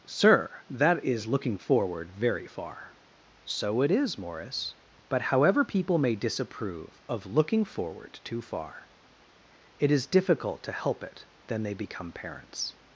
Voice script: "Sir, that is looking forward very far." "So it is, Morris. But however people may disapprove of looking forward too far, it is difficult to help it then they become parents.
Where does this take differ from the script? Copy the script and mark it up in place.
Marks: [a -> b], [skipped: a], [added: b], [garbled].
"Sir, that is looking forward very far." "So it is, Morris. But however people may disapprove of looking forward too far, it is difficult to help it then they become parents.